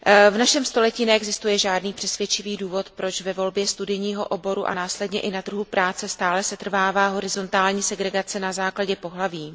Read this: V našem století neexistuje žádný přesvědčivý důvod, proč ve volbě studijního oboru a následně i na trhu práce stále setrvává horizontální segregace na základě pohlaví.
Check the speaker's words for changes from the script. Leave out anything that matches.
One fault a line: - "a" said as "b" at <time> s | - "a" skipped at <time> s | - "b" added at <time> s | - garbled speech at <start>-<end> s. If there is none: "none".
none